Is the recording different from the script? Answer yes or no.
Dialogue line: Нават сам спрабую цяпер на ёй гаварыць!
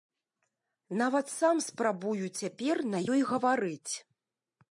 no